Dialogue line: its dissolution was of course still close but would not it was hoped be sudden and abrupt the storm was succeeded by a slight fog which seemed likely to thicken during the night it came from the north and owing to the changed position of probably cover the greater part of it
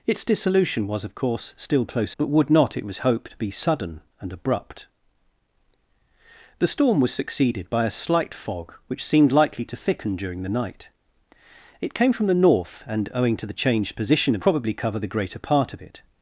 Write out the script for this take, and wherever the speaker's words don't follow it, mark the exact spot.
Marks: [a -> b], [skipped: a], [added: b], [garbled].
its dissolution was of course still close but would not it was hoped be sudden and abrupt the storm was succeeded by a slight fog which seemed likely to thicken during the night it came from the north and owing to the changed position of probably cover the greater part of it